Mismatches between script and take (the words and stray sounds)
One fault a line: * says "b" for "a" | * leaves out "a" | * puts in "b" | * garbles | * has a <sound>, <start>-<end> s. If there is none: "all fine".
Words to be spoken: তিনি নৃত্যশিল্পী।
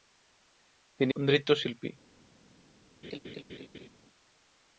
* has a laugh, 3.0-3.9 s